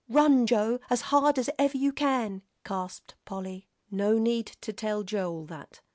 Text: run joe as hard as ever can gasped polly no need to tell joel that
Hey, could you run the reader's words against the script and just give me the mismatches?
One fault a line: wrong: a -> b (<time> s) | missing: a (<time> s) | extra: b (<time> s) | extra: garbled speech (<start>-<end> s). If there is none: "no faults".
extra: you (1.8 s)